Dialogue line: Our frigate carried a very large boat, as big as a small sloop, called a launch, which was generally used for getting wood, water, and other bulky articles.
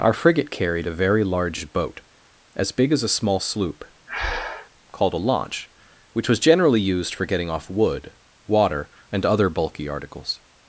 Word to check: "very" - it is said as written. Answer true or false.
true